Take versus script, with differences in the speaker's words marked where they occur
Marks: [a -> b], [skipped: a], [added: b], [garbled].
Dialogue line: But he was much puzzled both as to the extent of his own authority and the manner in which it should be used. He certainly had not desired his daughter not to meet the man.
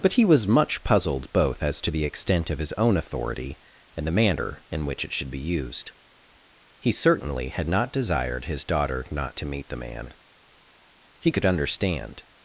But he was much puzzled both as to the extent of his own authority and the manner in which it should be used. He certainly had not desired his daughter not to meet the man. [added: He could understand]